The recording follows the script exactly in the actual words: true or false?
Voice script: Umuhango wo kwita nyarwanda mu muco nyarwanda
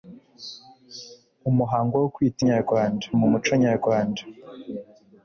true